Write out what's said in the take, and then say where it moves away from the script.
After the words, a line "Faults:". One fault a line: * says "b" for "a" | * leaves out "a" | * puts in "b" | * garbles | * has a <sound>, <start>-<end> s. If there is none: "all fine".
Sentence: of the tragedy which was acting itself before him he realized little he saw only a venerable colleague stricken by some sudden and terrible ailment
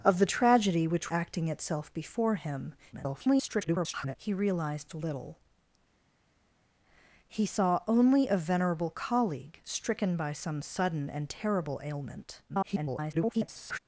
of the tragedy which acting itself before him [garbled] he realized little he saw only a venerable colleague stricken by some sudden and terrible ailment [garbled]
Faults:
* leaves out "was"
* garbles
* garbles